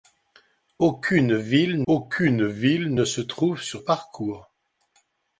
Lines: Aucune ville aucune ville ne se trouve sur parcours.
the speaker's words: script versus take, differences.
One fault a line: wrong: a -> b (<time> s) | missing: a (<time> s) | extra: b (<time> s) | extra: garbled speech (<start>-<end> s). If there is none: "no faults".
no faults